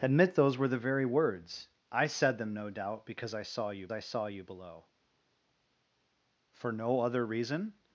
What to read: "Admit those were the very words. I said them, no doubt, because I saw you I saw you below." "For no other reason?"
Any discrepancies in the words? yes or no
no